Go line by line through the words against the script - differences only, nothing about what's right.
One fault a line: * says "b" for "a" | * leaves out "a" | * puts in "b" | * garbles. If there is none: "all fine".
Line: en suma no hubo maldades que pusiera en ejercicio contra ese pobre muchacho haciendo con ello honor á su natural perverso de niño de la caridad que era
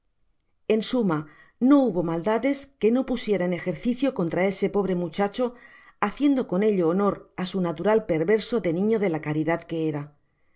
* puts in "no"